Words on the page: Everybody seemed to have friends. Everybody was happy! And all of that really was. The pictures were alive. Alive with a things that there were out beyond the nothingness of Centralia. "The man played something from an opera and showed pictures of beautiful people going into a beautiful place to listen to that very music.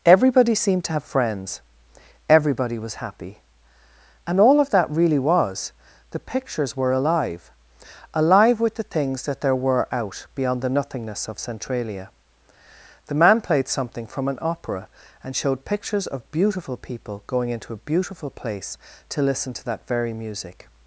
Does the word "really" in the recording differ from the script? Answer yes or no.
no